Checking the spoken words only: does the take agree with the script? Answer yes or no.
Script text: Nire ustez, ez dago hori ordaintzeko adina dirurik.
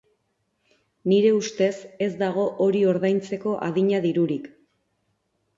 yes